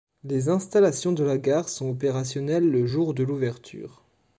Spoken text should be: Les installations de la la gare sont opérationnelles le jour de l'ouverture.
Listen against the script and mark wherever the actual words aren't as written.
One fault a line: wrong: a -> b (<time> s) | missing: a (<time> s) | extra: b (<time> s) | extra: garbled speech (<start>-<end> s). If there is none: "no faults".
missing: la (1.4 s)